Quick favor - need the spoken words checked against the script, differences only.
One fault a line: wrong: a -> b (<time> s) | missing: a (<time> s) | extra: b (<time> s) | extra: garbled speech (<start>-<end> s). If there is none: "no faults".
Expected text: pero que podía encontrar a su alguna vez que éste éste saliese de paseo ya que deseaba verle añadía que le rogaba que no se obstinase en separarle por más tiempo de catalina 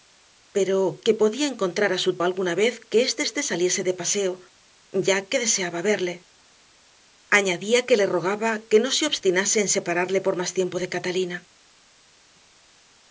no faults